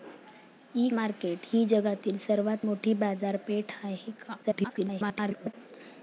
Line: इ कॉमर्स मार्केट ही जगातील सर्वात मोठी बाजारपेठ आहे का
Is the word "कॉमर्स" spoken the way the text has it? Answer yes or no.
no